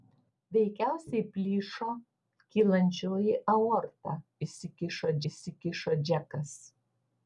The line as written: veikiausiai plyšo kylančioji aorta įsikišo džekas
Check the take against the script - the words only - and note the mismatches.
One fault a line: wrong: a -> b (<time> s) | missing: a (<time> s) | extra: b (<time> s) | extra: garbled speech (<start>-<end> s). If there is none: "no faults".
extra: įsikišo (5.3 s)